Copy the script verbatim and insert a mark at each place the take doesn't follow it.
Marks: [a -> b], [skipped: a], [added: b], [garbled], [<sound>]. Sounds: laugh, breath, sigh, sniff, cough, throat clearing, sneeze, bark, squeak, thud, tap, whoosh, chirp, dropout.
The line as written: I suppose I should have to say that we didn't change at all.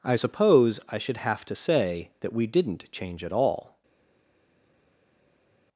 I suppose I should have to say that we didn't change at all.